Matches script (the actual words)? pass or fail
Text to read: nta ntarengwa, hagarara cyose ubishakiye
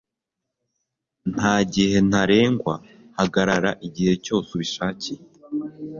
fail